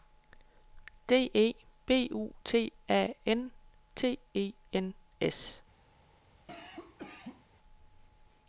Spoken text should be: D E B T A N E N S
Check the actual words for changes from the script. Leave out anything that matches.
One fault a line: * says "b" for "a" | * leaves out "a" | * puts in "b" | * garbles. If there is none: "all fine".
* puts in "U"
* puts in "T"